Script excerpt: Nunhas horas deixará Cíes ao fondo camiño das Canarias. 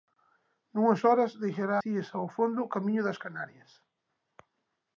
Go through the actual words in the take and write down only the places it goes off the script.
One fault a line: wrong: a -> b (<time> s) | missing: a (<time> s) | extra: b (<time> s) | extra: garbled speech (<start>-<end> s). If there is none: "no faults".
no faults